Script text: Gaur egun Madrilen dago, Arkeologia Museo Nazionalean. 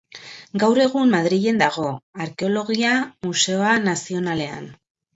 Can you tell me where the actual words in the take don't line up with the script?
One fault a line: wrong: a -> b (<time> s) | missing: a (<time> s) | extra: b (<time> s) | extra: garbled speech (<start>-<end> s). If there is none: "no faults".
no faults